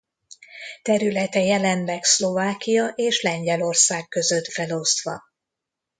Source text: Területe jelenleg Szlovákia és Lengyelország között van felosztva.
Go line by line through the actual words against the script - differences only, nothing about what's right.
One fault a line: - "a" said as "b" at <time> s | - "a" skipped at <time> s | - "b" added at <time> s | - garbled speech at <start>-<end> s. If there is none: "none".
- "van" skipped at 4.5 s